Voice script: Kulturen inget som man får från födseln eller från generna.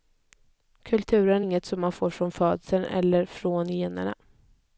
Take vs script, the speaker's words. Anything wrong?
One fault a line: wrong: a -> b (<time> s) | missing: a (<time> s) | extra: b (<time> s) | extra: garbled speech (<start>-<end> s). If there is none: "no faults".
no faults